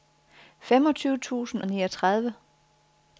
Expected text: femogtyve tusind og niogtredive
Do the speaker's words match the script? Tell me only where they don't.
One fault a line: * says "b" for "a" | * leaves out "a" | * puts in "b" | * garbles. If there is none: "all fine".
all fine